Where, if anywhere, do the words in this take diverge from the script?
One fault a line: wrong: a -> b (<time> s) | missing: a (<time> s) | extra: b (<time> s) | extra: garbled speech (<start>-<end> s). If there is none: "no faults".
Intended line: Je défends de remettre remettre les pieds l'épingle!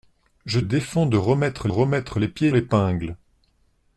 no faults